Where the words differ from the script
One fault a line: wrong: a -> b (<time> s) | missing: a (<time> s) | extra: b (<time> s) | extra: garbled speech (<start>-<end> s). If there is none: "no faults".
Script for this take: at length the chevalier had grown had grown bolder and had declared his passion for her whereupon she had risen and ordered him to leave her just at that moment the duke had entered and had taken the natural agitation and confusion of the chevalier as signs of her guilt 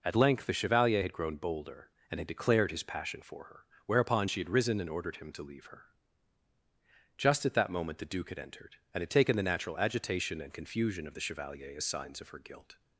missing: had grown (1.4 s)